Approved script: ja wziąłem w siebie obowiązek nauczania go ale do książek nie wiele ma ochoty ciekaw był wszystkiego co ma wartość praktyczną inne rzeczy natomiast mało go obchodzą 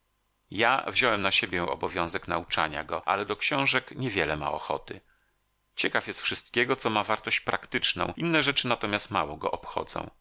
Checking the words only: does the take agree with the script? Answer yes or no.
no